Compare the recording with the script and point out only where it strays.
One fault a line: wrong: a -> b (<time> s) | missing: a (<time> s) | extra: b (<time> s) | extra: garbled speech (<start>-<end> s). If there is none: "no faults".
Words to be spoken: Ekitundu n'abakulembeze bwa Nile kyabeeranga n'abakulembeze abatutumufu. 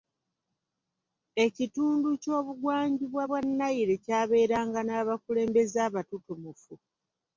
wrong: n'abakulembeze -> ky'obugwanjuba (2.2 s)